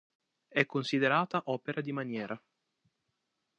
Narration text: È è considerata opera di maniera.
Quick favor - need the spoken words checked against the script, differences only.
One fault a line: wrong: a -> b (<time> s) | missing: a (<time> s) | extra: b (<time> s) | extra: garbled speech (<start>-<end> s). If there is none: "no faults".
missing: è (0.7 s)